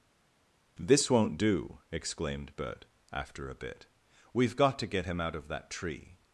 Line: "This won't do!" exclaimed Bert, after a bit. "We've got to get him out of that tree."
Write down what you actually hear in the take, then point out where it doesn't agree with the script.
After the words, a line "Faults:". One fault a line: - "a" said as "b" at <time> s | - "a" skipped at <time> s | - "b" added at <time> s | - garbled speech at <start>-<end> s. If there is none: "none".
"This won't do!" exclaimed Bert, after a bit. "We've got to get him out of that tree."
Faults:
none